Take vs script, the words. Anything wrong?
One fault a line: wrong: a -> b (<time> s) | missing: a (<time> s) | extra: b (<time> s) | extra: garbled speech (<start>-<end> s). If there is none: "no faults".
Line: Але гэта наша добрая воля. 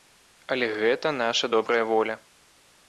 no faults